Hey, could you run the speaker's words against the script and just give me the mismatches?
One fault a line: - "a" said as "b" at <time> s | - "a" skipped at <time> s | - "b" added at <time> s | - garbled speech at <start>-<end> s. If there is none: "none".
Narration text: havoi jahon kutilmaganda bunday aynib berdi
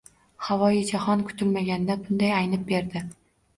none